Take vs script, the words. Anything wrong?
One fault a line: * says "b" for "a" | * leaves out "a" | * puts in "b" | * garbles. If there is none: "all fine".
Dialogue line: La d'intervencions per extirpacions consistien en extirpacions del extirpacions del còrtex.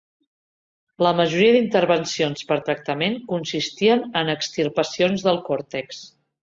* puts in "majoria"
* says "tractament" for "extirpacions"
* leaves out "extirpacions del"